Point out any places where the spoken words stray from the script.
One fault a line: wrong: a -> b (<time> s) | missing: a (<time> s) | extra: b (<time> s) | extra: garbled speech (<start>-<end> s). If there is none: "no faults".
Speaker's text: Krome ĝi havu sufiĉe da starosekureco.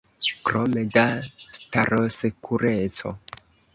missing: ĝi havu sufiĉe (0.8 s)